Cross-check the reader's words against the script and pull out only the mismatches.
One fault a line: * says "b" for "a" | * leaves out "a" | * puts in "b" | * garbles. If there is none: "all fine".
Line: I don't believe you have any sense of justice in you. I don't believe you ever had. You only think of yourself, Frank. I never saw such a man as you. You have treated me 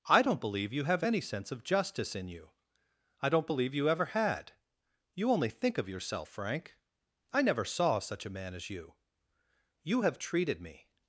all fine